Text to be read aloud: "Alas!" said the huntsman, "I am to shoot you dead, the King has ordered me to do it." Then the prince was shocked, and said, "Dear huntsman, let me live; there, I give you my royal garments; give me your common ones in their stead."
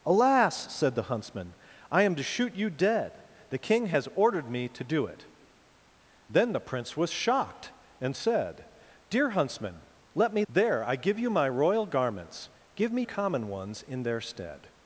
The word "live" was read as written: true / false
false